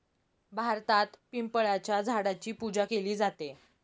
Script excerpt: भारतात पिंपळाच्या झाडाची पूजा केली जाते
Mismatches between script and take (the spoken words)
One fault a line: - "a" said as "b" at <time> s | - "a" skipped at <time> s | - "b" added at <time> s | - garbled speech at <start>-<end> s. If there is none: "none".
none